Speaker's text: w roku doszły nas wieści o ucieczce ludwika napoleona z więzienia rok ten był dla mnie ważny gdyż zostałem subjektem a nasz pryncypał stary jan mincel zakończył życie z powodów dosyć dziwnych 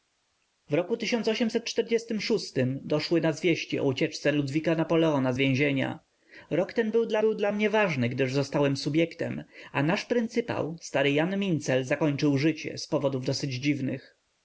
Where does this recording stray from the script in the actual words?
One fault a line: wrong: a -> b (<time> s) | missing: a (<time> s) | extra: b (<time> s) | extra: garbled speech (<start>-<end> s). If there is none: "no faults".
extra: był dla (7.2 s)